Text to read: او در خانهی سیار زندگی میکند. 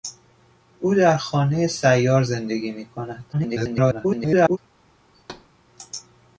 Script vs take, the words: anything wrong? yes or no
yes